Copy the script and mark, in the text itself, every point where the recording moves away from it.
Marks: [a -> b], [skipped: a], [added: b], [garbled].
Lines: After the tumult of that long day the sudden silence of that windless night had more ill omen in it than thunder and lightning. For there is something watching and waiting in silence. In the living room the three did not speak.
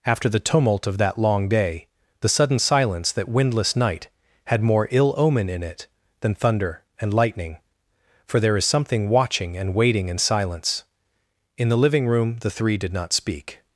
After the tumult of that long day the sudden silence [skipped: of] that windless night had more ill omen in it than thunder and lightning. For there is something watching and waiting in silence. In the living room the three did not speak.